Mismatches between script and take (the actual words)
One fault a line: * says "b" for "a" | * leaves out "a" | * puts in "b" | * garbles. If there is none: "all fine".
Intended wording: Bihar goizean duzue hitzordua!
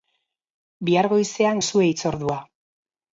all fine